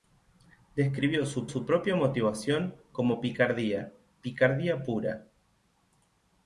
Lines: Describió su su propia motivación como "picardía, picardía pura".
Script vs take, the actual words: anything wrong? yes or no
no